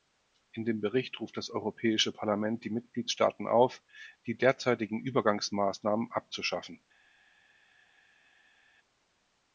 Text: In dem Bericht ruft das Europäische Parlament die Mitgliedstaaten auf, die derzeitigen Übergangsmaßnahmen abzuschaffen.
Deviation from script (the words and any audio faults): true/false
false